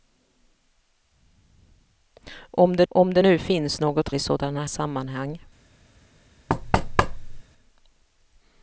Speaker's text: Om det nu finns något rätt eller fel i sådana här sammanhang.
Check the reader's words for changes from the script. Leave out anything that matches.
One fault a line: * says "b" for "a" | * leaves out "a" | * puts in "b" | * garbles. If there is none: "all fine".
* puts in "om det"
* leaves out "rätt eller fel"
* leaves out "här"